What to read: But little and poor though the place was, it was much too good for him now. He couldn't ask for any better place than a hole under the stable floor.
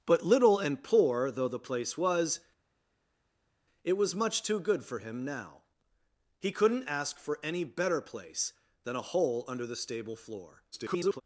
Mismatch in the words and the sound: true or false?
true